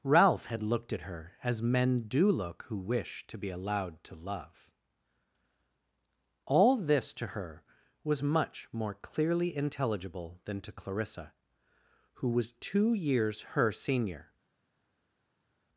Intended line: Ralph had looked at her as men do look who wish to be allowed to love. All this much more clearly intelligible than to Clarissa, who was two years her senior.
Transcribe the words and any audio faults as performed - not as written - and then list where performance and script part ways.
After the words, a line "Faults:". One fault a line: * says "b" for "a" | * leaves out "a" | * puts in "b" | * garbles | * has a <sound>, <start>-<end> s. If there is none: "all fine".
Ralph had looked at her as men do look who wish to be allowed to love. All this to her was much more clearly intelligible than to Clarissa, who was two years her senior.
Faults:
* puts in "to her was"